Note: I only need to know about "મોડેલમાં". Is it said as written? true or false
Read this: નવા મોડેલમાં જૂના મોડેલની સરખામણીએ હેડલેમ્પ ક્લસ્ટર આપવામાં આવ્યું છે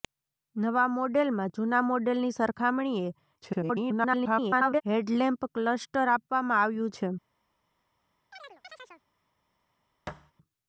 true